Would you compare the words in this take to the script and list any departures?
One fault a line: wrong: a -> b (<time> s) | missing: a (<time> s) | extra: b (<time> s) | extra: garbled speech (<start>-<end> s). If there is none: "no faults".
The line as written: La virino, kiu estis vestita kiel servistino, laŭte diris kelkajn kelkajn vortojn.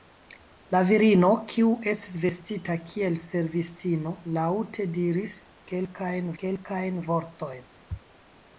no faults